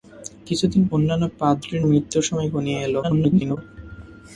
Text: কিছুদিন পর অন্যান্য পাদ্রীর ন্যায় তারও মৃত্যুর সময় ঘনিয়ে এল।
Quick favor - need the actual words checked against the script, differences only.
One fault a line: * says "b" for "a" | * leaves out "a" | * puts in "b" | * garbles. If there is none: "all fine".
* leaves out "পর"
* leaves out "ন্যায় তারও"
* garbles